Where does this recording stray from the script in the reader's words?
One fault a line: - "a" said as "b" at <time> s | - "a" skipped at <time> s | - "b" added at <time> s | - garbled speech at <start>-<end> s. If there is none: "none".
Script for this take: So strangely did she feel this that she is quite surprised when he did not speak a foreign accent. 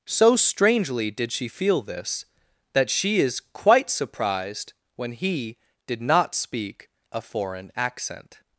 none